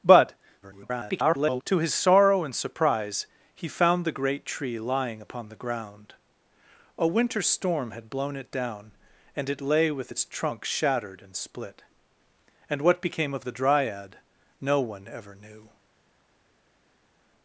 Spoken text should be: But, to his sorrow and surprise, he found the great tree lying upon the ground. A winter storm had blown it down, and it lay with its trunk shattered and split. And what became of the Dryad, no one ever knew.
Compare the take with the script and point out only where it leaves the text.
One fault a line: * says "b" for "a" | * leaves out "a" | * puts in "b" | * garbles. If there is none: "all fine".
* garbles